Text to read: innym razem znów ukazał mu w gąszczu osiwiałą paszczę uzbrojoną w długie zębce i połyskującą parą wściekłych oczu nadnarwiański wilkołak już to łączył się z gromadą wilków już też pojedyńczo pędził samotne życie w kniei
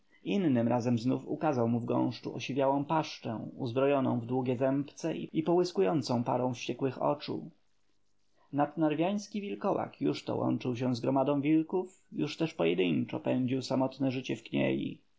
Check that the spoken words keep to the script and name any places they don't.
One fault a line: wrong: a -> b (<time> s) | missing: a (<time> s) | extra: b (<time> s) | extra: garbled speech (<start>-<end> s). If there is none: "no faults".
no faults